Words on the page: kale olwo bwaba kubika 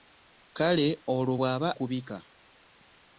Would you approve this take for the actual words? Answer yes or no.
yes